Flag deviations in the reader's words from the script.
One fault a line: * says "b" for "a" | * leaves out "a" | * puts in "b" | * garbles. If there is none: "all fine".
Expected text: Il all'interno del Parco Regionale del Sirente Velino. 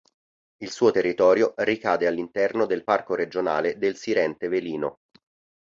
* puts in "suo territorio ricade"